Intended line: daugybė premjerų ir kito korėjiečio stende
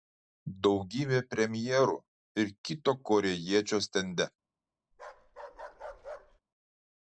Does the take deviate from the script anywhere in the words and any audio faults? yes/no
yes